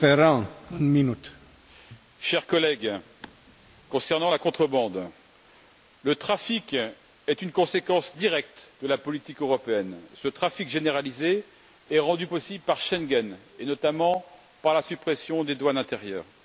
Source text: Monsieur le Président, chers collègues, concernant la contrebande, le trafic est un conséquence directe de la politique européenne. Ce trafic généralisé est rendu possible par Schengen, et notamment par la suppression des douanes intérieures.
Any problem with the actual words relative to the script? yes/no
yes